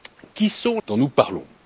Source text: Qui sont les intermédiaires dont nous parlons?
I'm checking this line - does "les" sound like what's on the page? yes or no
no